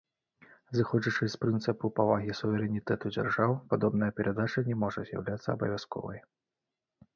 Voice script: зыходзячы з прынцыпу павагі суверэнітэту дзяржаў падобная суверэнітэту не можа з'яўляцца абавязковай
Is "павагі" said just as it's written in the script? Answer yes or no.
yes